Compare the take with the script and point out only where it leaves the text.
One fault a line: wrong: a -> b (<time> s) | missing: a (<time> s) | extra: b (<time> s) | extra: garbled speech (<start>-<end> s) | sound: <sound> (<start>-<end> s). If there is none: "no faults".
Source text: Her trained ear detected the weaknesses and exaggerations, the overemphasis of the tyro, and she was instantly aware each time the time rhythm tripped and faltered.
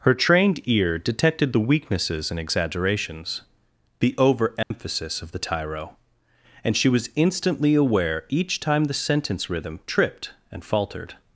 sound: dropout (4.6-4.7 s)
wrong: time -> sentence (8.9 s)